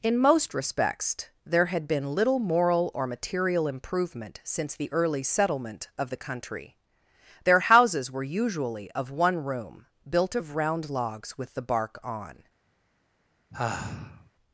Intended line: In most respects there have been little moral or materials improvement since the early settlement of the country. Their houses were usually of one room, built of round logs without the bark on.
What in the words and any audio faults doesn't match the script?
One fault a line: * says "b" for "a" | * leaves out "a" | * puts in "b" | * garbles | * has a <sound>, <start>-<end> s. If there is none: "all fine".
* says "had" for "have"
* says "material" for "materials"
* says "with" for "without"
* has a sigh, 13.5-14.3 s